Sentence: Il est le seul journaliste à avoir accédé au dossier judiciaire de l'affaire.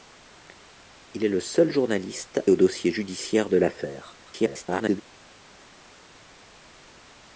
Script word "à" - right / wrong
wrong